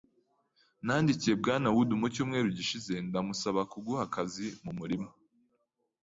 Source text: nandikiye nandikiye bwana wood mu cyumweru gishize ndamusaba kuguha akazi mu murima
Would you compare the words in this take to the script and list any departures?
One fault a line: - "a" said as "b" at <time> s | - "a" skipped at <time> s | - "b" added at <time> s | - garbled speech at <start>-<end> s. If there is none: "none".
- "nandikiye" skipped at 1.3 s